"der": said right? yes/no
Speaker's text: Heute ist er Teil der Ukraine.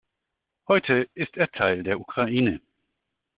yes